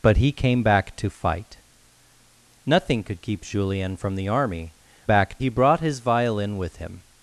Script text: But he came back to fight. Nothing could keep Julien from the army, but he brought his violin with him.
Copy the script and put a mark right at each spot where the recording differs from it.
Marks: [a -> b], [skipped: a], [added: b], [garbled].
But he came back to fight. Nothing could keep Julien from the army, [but -> back] he brought his violin with him.